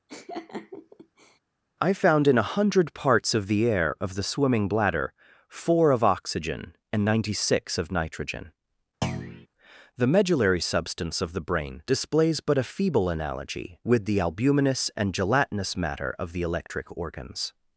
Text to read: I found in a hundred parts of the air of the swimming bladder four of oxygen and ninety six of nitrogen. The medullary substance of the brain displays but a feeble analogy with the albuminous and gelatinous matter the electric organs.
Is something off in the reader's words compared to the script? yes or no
yes